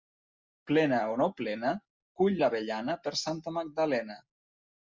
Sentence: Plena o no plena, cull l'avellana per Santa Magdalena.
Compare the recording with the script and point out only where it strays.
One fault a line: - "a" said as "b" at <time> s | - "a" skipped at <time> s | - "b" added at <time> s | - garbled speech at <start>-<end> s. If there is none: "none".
none